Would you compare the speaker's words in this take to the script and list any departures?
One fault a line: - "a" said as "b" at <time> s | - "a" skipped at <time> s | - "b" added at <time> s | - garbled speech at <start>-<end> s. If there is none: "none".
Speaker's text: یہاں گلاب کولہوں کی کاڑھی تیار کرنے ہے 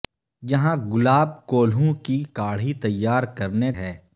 none